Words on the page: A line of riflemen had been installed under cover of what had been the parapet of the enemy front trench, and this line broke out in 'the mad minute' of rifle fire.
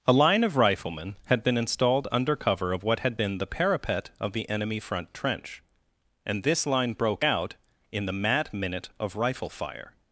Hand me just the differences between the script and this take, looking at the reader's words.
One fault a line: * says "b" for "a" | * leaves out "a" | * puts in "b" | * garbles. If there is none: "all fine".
all fine